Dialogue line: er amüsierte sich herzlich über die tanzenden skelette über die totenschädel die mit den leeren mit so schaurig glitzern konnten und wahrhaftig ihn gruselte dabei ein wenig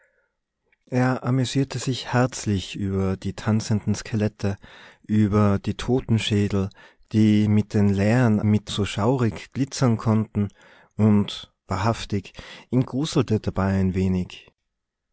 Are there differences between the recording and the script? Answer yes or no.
no